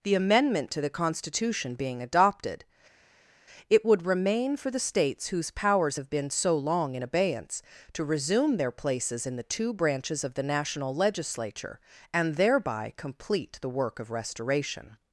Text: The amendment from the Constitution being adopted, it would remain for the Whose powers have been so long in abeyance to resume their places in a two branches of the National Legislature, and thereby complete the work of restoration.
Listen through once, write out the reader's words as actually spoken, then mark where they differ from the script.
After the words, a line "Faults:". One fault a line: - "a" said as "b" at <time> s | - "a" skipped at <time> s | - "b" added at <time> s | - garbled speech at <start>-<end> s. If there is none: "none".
The amendment to the Constitution being adopted, it would remain for the States whose powers have been so long in abeyance to resume their places in the two branches of the National Legislature, and thereby complete the work of restoration.
Faults:
- "from" said as "to" at 0.7 s
- "States" added at 4.8 s
- "a" said as "the" at 9.4 s